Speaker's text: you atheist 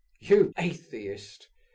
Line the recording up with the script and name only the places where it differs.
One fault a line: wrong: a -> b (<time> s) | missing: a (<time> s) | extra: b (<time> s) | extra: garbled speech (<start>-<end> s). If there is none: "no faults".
no faults